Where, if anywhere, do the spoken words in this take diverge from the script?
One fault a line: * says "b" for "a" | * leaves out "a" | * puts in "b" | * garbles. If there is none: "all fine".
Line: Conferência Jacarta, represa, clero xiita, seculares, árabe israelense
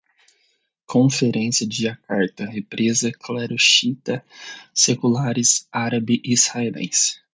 * puts in "de"